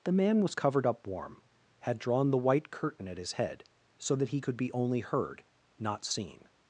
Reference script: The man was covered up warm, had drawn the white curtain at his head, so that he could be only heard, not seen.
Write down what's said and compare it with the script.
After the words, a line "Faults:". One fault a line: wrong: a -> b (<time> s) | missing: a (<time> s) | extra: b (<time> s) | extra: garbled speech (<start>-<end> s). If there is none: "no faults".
The man was covered up warm, had drawn the white curtain at his head, so that he could be only heard, not seen.
Faults:
no faults